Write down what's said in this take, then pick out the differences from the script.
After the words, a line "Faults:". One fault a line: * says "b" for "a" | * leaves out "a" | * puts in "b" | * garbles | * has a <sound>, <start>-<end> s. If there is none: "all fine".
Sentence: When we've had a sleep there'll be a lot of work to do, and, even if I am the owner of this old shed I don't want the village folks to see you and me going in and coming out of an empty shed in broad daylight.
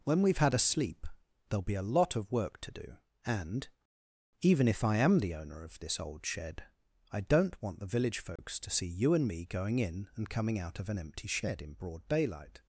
When we've had a sleep there'll be a lot of work to do, and, even if I am the owner of this old shed I don't want the village folks to see you and me going in and coming out of an empty shed in broad daylight.
Faults:
* has a dropout, 8.4-8.4 s